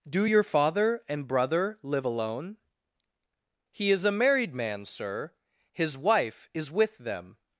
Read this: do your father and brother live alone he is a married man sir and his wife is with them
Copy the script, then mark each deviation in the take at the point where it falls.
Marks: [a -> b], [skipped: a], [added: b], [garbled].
do your father and brother live alone he is a married man sir [skipped: and] his wife is with them